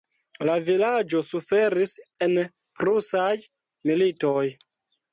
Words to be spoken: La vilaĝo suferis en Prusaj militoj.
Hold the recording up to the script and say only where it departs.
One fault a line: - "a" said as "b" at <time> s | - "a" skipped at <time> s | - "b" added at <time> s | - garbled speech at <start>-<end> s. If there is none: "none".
none